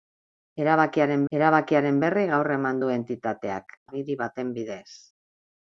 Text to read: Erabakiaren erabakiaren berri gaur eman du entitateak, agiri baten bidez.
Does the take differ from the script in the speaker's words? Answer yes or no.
no